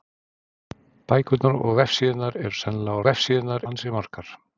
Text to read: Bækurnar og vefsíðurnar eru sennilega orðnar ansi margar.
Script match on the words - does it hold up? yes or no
no